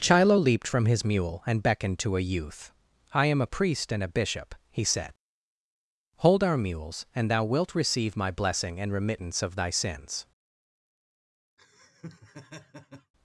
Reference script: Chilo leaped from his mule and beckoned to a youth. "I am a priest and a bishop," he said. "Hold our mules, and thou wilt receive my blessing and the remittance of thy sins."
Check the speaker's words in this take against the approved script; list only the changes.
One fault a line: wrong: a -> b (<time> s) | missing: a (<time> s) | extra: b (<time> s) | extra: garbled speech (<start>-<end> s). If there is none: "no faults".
missing: the (8.9 s)